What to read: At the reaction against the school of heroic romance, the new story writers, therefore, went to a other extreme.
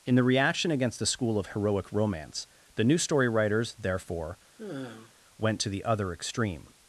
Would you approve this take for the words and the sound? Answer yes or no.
no